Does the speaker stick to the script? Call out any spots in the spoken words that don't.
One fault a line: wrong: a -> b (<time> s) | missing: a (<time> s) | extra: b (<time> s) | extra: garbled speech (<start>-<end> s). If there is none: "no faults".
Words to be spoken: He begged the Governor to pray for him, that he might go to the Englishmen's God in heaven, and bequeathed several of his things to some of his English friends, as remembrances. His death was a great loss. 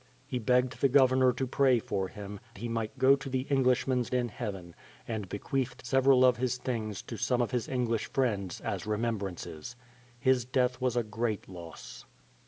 missing: that (2.4 s)
missing: God (4.1 s)